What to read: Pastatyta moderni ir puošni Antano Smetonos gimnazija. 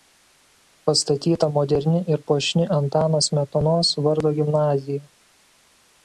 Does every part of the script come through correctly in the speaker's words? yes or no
no